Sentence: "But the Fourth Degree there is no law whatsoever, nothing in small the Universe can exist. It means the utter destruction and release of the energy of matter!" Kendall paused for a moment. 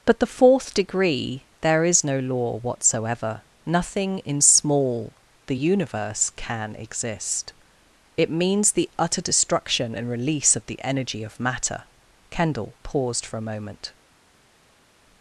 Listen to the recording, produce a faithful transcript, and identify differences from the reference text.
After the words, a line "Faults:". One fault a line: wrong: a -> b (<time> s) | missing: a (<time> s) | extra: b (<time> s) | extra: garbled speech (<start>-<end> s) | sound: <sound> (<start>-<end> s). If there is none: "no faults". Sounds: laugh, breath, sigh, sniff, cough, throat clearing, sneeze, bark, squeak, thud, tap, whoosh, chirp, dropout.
"But the Fourth Degree there is no law whatsoever, nothing in small the Universe can exist. It means the utter destruction and release of the energy of matter!" Kendall paused for a moment.
Faults:
no faults